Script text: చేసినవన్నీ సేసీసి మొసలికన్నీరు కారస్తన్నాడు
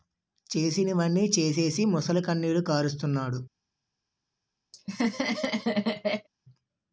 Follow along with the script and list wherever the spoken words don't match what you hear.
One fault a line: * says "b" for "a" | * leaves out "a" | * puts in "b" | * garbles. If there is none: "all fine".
all fine